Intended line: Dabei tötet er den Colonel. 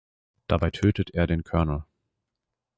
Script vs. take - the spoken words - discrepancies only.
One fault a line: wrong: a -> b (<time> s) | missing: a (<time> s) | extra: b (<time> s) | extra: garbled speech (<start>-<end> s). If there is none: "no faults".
no faults